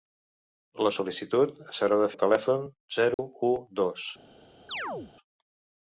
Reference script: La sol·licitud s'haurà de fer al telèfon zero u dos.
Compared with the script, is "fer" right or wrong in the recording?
wrong